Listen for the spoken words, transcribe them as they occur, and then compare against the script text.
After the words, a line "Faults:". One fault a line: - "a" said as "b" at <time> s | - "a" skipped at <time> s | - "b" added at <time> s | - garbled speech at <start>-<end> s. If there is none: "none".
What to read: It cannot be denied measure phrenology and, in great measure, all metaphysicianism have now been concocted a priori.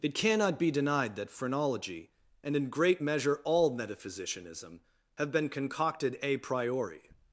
It cannot be denied that phrenology and, in great measure, all metaphysicianism have been concocted a priori.
Faults:
- "measure" said as "that" at 1.1 s
- "now" skipped at 5.3 s